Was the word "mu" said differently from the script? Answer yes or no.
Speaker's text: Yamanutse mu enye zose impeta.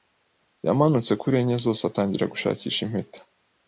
yes